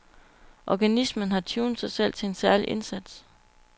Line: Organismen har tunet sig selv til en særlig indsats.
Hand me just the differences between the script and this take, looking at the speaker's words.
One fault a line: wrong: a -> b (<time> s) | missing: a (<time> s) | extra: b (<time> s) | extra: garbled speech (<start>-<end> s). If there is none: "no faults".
no faults